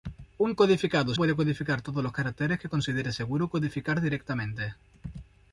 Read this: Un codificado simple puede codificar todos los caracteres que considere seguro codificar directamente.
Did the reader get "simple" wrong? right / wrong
wrong